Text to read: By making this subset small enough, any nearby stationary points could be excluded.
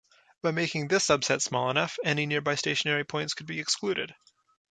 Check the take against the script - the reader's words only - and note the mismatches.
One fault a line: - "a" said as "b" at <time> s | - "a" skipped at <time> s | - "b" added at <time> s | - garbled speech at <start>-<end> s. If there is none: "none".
none